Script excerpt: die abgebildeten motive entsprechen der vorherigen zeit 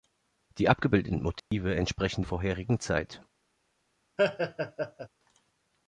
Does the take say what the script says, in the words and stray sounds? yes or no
no